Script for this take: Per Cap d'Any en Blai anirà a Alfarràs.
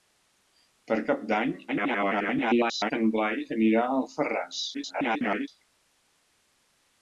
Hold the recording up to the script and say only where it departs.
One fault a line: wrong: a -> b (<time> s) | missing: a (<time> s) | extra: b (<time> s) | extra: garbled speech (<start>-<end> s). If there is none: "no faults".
extra: garbled speech (1.7-2.9 s)
extra: garbled speech (4.7-5.5 s)